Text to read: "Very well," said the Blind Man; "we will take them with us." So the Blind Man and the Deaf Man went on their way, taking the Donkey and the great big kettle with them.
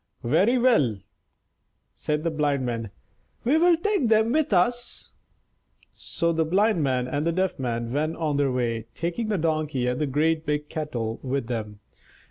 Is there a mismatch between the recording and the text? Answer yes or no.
no